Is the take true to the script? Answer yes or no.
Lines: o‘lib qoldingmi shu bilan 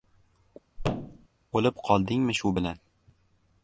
yes